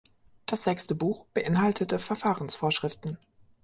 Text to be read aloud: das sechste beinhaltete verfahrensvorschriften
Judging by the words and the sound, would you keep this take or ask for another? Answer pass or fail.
fail